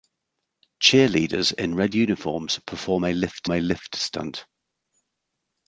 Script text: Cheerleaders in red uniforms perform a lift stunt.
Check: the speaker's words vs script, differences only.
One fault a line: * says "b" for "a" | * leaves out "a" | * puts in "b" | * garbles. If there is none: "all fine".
* puts in "a lift"